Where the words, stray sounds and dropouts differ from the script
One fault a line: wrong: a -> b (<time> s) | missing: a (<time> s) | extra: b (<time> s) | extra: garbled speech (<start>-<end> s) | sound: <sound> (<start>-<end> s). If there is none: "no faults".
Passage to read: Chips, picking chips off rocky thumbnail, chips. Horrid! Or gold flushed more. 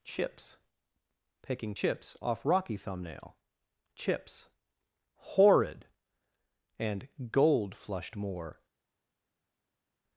wrong: Or -> And (6.8 s)